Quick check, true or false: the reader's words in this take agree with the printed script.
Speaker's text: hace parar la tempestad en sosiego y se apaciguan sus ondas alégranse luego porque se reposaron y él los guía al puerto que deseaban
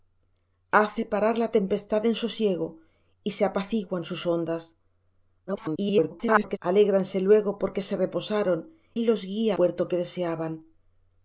false